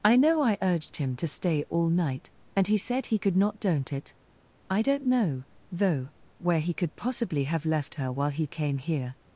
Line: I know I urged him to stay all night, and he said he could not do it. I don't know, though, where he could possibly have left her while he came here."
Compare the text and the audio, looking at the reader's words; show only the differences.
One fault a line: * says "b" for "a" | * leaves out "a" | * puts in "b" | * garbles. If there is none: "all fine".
* says "don't" for "do"